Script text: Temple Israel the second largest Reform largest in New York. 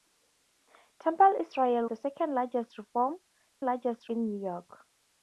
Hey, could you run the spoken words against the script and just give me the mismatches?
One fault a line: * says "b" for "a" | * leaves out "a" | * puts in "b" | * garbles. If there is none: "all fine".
all fine